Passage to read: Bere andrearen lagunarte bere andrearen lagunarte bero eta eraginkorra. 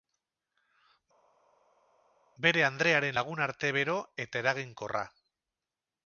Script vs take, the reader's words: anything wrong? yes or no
yes